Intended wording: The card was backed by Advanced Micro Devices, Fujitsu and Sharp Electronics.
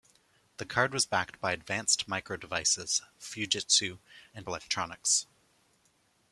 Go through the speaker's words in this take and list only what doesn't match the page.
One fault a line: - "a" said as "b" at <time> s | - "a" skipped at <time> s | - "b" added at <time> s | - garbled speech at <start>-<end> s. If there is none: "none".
- "Sharp" skipped at 4.5 s